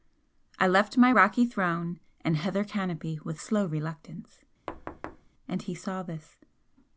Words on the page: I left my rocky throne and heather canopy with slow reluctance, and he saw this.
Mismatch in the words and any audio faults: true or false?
true